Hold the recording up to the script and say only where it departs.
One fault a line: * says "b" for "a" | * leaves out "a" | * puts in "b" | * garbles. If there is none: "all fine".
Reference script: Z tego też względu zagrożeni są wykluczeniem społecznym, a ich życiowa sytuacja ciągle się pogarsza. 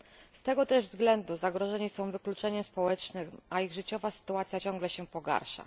all fine